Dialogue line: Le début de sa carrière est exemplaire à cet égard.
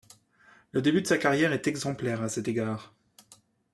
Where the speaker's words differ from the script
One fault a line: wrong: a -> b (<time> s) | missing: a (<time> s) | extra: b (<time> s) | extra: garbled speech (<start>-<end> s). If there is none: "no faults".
no faults